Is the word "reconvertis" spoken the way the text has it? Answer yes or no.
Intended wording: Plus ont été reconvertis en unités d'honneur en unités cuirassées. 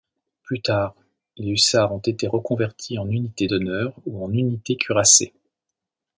yes